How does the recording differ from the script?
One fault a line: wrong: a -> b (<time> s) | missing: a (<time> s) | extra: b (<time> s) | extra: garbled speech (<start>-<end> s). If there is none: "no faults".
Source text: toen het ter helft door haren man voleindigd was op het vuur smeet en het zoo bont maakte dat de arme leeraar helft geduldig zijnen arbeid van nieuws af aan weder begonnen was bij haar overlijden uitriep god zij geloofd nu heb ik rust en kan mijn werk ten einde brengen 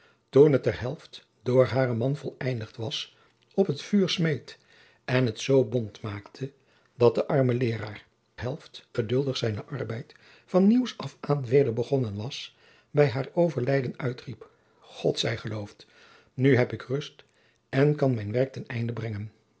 no faults